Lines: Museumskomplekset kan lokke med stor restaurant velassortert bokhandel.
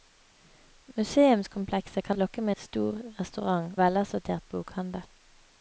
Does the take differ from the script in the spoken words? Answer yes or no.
no